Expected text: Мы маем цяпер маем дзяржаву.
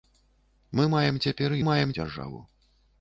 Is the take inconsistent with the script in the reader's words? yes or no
no